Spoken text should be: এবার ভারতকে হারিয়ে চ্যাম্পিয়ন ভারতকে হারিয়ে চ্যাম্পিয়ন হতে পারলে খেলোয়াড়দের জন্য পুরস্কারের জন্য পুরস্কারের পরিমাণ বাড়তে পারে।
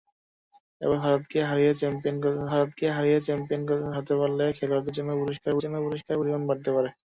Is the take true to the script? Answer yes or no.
yes